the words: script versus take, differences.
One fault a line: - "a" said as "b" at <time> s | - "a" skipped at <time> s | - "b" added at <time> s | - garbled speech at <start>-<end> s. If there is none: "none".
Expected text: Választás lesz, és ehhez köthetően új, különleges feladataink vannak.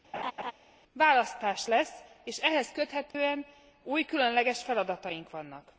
none